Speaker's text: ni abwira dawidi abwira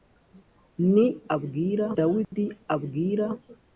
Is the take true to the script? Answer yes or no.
yes